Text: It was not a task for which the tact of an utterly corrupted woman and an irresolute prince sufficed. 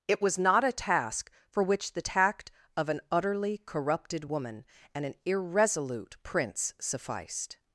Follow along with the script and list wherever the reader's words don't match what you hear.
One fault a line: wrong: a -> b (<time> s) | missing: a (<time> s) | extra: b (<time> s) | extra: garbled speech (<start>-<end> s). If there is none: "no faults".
no faults